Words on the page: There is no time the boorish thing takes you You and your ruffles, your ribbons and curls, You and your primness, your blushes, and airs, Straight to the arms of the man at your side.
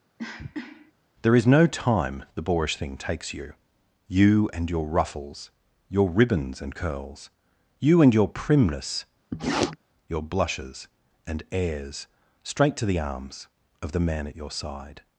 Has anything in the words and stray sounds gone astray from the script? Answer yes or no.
yes